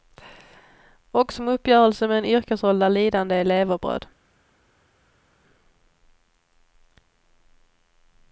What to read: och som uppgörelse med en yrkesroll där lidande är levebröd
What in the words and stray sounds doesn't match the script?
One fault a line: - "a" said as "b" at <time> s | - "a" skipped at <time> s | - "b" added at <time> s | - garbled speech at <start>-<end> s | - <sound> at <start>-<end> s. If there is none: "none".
none